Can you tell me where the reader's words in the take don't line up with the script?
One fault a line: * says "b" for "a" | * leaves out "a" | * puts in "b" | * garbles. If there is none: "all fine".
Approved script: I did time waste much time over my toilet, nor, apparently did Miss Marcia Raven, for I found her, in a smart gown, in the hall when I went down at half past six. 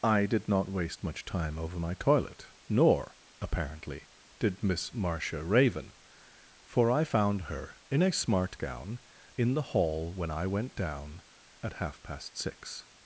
* says "not" for "time"